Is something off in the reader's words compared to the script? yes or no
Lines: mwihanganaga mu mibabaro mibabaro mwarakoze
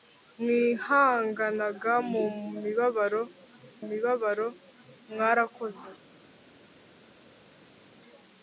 no